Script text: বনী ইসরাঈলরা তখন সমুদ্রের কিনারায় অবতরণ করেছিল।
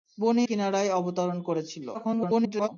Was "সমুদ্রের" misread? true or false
true